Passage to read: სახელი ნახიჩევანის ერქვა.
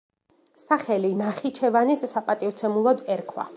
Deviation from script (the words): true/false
true